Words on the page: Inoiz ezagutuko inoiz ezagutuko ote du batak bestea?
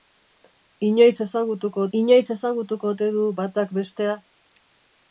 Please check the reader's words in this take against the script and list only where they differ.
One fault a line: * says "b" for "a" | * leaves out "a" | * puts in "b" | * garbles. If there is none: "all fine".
all fine